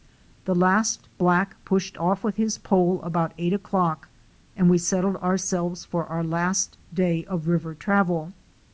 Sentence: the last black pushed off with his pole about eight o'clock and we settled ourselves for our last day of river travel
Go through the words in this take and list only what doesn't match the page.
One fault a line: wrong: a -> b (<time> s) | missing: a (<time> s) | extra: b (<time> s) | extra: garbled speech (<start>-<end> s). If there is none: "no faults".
no faults